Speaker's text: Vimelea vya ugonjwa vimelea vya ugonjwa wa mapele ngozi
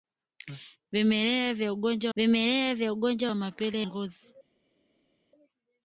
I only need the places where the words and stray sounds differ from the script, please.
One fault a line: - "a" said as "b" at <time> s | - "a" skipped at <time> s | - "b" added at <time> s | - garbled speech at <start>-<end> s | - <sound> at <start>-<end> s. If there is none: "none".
none